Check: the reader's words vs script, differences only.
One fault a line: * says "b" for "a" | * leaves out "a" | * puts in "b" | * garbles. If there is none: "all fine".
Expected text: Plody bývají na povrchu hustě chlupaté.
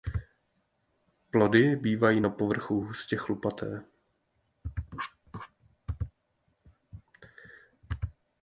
all fine